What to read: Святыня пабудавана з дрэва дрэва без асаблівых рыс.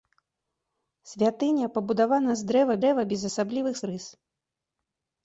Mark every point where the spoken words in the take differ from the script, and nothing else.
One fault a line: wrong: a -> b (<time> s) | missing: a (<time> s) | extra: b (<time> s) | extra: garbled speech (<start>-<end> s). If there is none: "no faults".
no faults